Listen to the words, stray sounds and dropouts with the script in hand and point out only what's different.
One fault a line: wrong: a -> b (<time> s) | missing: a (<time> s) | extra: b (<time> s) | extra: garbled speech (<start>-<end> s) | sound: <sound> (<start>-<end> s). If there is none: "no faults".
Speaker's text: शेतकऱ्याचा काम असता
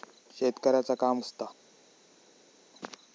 no faults